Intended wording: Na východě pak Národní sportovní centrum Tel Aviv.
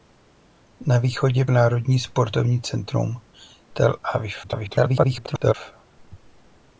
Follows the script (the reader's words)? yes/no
no